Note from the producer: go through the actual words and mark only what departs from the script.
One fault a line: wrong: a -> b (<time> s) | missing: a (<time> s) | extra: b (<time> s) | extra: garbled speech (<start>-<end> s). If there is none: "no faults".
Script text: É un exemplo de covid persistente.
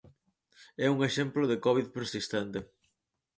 no faults